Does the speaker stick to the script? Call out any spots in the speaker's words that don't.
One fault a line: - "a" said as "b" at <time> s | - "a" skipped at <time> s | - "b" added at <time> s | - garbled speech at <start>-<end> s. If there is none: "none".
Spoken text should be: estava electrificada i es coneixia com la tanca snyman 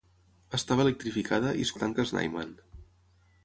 - "coneixia com" skipped at 1.8 s